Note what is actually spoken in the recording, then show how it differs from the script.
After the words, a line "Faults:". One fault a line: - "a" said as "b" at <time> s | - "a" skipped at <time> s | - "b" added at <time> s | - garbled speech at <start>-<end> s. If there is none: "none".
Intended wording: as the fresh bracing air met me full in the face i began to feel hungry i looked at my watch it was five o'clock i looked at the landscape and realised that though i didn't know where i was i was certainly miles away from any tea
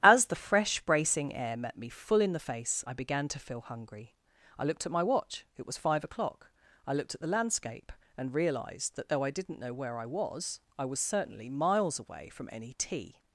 as the fresh bracing air met me full in the face i began to feel hungry i looked at my watch it was five o'clock i looked at the landscape and realised that though i didn't know where i was i was certainly miles away from any tea
Faults:
none